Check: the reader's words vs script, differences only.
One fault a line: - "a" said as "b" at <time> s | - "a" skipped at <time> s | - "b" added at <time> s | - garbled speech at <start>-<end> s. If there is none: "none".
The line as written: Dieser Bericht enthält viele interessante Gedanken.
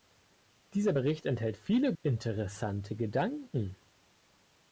none